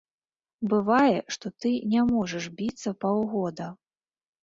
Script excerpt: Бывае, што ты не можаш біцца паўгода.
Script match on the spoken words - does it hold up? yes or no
yes